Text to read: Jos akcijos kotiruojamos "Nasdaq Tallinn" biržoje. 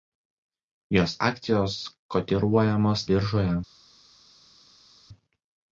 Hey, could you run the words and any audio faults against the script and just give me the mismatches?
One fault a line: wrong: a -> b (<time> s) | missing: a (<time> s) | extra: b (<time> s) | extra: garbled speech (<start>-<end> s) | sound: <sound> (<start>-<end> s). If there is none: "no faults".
missing: Nasdaq Tallinn (3.1 s)